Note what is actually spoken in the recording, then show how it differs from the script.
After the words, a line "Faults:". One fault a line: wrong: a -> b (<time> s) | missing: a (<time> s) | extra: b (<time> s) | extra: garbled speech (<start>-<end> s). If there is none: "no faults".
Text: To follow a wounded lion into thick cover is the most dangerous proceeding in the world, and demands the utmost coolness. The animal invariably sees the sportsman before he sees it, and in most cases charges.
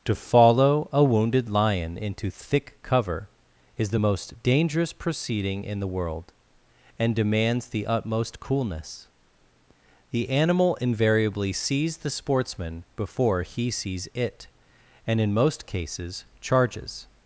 To follow a wounded lion into thick cover is the most dangerous proceeding in the world, and demands the utmost coolness. The animal invariably sees the sportsman before he sees it, and in most cases charges.
Faults:
no faults